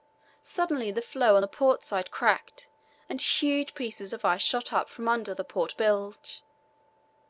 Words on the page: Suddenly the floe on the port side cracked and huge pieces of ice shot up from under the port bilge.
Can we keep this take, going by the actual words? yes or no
yes